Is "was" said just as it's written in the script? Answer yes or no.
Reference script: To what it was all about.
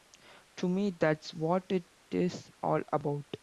no